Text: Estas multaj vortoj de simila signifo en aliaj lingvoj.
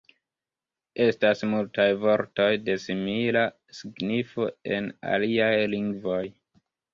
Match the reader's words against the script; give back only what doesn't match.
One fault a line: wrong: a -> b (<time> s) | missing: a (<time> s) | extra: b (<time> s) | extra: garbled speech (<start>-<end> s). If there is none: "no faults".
no faults